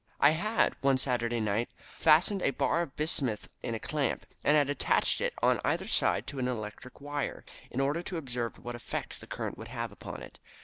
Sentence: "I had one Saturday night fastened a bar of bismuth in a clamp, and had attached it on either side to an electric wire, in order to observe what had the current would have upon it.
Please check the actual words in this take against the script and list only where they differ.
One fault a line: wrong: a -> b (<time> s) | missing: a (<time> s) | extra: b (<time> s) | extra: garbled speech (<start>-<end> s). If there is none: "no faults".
wrong: had -> effect (8.7 s)